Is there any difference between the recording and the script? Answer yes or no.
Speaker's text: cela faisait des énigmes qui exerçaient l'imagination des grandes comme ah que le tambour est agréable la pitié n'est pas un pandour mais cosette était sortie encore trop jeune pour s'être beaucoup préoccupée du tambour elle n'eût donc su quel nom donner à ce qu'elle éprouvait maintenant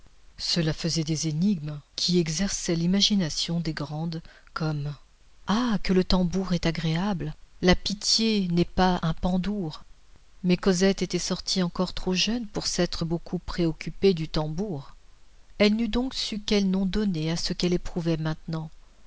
no